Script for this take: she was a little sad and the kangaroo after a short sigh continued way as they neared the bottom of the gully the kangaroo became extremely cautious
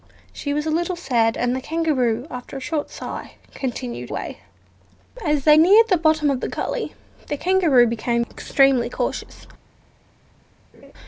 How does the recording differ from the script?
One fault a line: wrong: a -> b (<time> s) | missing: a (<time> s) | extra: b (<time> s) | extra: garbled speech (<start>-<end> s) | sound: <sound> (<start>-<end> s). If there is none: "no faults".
sound: laugh (10.7-10.9 s)